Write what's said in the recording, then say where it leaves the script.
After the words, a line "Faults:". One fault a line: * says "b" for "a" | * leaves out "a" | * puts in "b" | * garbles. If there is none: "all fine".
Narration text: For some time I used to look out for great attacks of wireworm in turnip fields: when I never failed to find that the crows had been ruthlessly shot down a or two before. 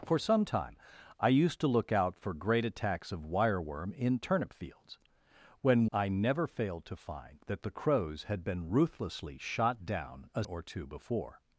For some time I used to look out for great attacks of wireworm in turnip fields: when I never failed to find that the crows had been ruthlessly shot down a or two before.
Faults:
all fine